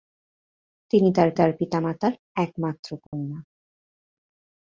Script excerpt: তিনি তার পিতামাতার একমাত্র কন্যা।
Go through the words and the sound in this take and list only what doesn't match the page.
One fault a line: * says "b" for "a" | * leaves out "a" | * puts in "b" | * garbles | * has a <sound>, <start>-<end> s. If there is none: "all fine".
* puts in "তার"
* has a dropout, 3.1-3.1 s